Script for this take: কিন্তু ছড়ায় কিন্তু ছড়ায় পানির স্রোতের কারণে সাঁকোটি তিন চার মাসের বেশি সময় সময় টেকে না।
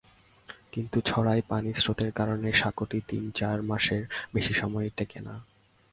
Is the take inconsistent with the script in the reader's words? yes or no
yes